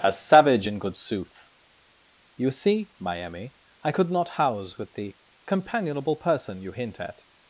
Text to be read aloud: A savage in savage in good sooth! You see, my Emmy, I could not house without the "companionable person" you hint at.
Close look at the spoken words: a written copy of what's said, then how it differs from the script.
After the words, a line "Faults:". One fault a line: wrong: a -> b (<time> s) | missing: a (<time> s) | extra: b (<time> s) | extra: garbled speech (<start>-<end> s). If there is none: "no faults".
A savage in good sooth! You see, my Emmy, I could not house with the "companionable person" you hint at.
Faults:
missing: savage in (0.8 s)
wrong: without -> with (4.8 s)